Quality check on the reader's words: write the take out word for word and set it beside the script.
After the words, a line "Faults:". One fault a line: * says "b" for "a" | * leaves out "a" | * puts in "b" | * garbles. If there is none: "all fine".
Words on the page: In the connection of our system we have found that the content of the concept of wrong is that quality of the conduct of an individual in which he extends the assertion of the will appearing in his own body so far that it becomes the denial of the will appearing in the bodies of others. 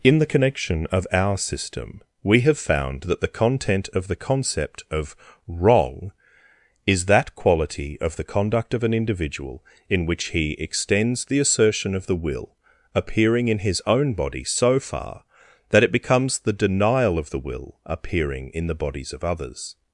In the connection of our system we have found that the content of the concept of wrong is that quality of the conduct of an individual in which he extends the assertion of the will appearing in his own body so far that it becomes the denial of the will appearing in the bodies of others.
Faults:
all fine